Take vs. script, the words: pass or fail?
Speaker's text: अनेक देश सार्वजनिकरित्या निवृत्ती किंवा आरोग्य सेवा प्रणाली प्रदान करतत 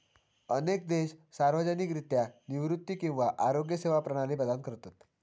pass